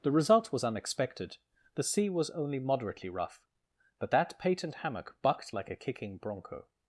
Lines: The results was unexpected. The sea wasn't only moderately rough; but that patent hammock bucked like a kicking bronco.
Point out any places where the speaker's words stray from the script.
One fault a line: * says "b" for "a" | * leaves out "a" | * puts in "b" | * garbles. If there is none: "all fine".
* says "result" for "results"
* says "was" for "wasn't"